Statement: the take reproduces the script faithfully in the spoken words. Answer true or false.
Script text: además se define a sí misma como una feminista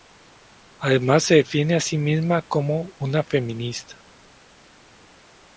true